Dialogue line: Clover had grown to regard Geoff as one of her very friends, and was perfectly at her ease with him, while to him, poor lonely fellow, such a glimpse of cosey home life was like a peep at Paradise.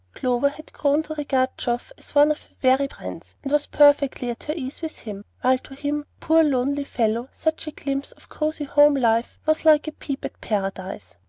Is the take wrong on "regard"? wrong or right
right